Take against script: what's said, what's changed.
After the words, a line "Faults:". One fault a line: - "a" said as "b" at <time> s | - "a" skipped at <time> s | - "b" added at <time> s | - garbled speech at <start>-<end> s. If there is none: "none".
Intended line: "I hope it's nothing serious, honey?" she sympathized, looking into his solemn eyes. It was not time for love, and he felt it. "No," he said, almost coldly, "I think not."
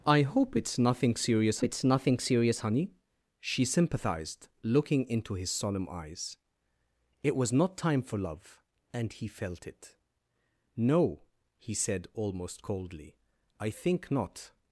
"I hope it's nothing serious it's nothing serious, honey?" she sympathized, looking into his solemn eyes. It was not time for love, and he felt it. "No," he said, almost coldly, "I think not."
Faults:
- "it's nothing serious" added at 1.6 s